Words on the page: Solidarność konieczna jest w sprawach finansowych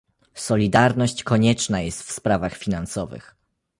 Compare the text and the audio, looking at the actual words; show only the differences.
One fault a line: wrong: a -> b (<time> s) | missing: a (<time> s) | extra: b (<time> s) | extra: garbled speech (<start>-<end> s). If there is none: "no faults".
no faults